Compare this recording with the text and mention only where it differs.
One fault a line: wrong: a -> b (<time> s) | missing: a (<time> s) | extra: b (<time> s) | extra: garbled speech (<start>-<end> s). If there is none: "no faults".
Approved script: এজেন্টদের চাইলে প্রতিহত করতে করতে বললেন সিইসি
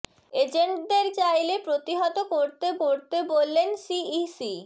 no faults